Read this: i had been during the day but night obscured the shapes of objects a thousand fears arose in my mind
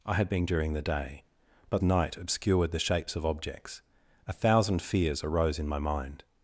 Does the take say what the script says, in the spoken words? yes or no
yes